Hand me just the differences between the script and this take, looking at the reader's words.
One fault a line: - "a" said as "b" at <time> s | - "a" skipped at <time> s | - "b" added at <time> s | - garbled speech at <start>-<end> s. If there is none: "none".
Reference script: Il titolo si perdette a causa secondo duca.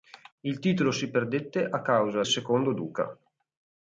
none